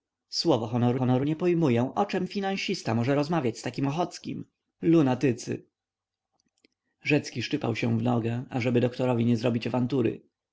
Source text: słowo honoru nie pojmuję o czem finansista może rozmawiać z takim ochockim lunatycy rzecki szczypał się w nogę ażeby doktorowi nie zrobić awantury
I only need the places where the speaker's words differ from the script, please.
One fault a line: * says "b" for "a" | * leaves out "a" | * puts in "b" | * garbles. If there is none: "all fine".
* puts in "honoru"